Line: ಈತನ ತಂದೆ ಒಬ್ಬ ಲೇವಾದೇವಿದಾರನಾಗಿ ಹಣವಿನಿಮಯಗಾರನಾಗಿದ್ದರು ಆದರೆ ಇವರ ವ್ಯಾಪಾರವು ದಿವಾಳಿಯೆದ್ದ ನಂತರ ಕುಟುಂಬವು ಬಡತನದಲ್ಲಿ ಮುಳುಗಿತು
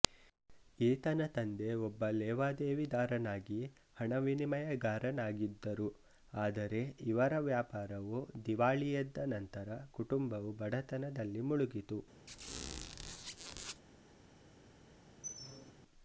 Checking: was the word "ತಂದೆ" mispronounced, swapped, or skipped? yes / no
no